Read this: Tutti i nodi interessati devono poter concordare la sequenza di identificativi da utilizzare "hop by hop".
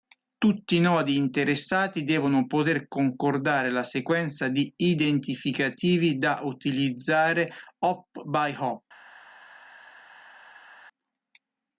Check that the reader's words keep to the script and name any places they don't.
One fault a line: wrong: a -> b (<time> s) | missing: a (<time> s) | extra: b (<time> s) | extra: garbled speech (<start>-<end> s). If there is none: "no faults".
no faults